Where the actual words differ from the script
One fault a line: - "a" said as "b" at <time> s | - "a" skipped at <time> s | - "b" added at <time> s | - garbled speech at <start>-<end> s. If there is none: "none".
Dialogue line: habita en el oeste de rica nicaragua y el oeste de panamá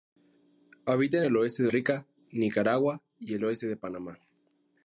none